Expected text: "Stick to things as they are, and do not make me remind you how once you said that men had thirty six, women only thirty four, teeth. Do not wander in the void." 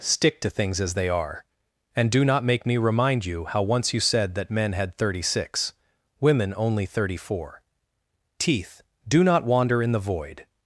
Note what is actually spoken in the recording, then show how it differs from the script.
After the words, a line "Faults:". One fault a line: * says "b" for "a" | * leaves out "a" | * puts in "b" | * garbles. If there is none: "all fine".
"Stick to things as they are, and do not make me remind you how once you said that men had thirty six, women only thirty four, teeth. Do not wander in the void."
Faults:
all fine